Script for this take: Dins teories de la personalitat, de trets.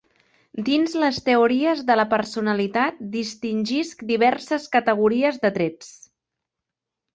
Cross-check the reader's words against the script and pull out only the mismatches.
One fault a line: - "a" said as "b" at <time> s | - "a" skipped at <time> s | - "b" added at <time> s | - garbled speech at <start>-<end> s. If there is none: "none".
- "les" added at 1.0 s
- "distingisc diverses categories" added at 3.2 s